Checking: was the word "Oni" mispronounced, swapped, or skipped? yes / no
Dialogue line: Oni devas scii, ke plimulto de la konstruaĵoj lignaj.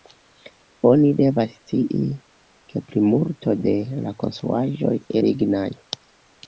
no